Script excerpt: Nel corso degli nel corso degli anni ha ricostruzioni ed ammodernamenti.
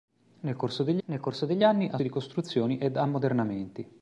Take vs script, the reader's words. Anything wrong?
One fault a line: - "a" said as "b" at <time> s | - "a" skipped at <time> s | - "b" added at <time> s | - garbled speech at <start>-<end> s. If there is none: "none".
none